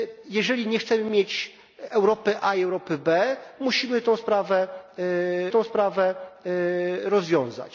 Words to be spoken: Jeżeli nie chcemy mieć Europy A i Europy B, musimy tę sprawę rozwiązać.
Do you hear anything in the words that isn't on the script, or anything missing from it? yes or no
yes